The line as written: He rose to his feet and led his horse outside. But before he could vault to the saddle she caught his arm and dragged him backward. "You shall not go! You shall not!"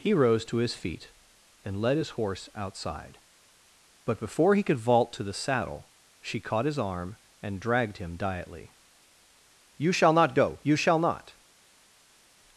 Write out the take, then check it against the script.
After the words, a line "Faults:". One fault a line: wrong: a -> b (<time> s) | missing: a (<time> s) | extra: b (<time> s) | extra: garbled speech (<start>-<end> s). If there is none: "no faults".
He rose to his feet and led his horse outside. But before he could vault to the saddle she caught his arm and dragged him diately. "You shall not go! You shall not!"
Faults:
wrong: backward -> diately (8.2 s)